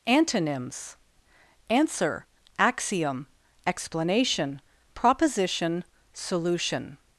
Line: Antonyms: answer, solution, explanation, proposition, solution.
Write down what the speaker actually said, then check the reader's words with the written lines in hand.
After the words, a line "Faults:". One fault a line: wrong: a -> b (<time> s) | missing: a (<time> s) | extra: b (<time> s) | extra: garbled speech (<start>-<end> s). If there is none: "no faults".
Antonyms: answer, axiom, explanation, proposition, solution.
Faults:
wrong: solution -> axiom (2.6 s)